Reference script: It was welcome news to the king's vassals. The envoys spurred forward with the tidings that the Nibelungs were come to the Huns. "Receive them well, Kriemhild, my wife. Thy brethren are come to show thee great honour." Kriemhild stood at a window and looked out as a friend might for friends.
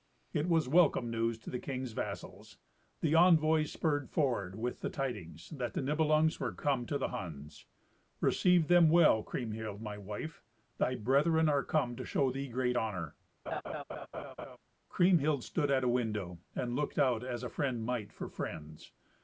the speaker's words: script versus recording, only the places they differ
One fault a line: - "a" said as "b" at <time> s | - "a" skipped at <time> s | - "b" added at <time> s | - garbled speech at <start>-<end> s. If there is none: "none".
none